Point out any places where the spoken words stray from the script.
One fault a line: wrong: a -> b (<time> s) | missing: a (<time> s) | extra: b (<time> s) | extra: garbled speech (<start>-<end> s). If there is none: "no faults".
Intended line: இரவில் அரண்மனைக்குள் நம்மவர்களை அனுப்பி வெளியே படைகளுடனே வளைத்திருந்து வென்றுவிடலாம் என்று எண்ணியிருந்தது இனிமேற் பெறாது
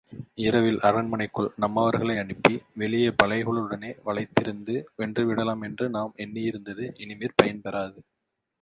extra: நாம் (5.9 s)
extra: பயன் (7.4 s)